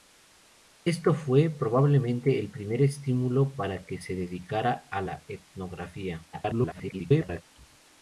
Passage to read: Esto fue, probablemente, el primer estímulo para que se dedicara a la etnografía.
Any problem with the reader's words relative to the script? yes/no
yes